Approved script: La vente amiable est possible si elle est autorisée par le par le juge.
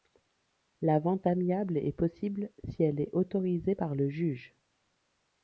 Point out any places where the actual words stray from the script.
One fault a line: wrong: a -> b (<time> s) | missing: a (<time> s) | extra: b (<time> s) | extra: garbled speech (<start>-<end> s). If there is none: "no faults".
missing: par le (4.1 s)